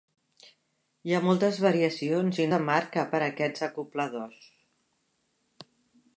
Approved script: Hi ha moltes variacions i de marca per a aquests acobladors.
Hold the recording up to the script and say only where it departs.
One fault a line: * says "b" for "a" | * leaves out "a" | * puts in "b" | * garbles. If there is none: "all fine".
all fine